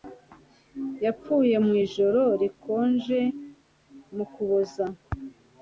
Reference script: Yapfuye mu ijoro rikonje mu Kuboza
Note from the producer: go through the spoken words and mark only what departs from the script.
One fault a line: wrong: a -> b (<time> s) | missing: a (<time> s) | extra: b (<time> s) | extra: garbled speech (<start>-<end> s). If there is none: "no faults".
no faults